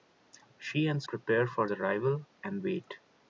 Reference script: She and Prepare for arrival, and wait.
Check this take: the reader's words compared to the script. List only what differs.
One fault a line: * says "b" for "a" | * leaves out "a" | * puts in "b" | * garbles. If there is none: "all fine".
all fine